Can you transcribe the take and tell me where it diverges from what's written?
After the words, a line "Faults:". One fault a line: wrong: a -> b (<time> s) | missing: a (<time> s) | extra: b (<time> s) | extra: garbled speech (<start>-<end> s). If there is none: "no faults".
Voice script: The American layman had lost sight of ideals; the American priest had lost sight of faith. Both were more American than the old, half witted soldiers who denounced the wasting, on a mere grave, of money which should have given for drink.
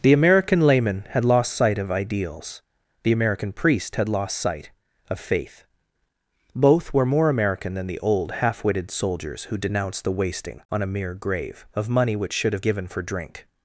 The American layman had lost sight of ideals; the American priest had lost sight of faith. Both were more American than the old, half witted soldiers who denounced the wasting, on a mere grave, of money which should have given for drink.
Faults:
no faults